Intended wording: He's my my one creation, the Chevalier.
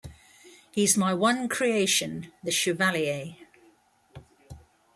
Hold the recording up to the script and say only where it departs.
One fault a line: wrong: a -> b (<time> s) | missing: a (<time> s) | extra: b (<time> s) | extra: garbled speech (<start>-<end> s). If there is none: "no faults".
missing: my (1.1 s)